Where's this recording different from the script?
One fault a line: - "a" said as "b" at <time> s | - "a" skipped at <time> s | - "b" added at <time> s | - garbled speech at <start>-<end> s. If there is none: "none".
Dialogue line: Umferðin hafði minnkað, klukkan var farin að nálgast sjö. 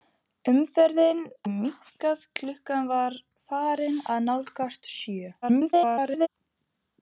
- "hafði" skipped at 1.2 s
- garbled speech at 5.4-6.3 s